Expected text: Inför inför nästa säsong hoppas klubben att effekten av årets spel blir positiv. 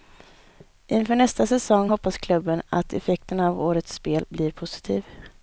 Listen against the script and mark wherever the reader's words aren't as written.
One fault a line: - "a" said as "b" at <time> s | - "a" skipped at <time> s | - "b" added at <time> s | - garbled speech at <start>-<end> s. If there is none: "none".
- "inför" skipped at 1.1 s